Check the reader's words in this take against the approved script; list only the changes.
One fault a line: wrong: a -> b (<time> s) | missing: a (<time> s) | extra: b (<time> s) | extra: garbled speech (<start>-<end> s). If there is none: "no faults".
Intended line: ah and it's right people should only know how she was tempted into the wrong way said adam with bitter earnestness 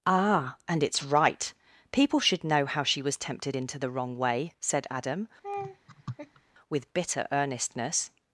missing: only (2.4 s)